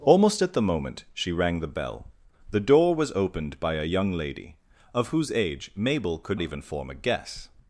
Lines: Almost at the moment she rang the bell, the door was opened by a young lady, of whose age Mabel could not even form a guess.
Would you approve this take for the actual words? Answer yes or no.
no